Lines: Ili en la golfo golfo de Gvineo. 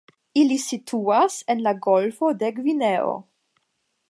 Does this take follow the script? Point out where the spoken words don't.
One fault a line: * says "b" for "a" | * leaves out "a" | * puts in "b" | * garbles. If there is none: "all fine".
* puts in "situas"
* leaves out "golfo"